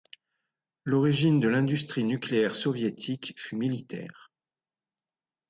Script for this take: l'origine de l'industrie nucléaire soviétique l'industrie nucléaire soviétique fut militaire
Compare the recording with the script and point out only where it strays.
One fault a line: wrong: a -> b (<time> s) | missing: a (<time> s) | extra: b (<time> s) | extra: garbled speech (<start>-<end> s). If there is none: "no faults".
missing: l'industrie nucléaire soviétique (3.4 s)